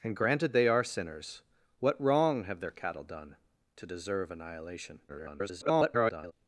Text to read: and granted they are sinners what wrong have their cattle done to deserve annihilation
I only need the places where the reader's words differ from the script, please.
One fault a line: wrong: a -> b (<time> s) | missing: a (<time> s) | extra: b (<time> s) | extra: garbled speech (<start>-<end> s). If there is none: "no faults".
extra: garbled speech (5.1-6.3 s)